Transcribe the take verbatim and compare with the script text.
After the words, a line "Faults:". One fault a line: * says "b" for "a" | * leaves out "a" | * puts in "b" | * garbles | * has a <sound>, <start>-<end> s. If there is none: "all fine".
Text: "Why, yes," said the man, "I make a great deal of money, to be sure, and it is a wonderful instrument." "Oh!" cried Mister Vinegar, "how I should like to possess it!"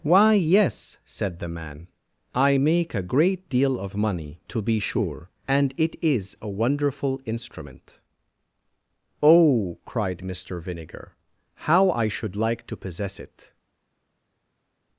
"Why, yes," said the man, "I make a great deal of money, to be sure, and it is a wonderful instrument." "Oh!" cried Mister Vinegar, "how I should like to possess it!"
Faults:
all fine